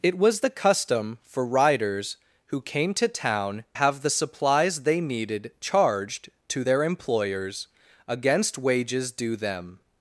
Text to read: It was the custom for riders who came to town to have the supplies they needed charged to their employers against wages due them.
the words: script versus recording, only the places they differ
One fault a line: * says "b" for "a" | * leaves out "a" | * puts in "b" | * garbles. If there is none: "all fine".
* leaves out "to"